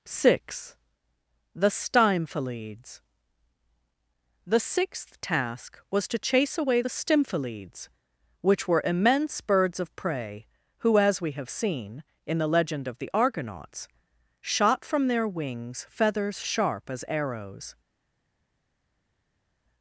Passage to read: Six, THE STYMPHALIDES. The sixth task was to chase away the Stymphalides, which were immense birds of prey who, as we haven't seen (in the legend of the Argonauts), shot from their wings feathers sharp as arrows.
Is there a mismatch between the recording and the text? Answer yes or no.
yes